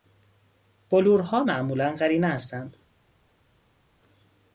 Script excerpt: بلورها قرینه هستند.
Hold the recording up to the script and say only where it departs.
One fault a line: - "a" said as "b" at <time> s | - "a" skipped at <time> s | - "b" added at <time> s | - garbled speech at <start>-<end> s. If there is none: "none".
- "معمولا" added at 1.4 s